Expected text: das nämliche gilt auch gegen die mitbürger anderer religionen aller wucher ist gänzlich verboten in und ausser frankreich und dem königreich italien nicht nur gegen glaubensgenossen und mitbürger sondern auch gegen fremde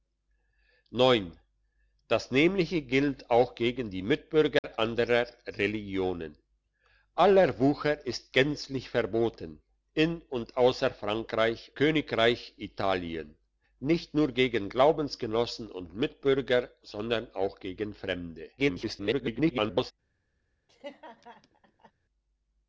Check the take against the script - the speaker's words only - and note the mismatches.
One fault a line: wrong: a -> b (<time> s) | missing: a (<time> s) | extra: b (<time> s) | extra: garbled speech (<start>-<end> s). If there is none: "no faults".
missing: und dem (11.7 s)
extra: garbled speech (18.6-19.9 s)